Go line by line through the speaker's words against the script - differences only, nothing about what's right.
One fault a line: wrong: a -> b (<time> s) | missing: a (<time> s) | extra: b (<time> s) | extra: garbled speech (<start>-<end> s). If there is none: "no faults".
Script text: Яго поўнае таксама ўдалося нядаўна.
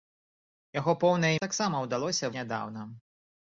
no faults